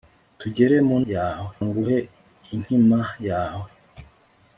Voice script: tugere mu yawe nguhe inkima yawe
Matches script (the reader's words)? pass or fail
pass